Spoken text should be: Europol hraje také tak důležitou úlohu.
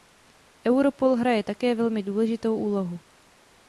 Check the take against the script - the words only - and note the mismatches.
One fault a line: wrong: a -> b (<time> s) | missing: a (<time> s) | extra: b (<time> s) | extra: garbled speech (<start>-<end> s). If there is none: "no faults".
wrong: tak -> velmi (1.7 s)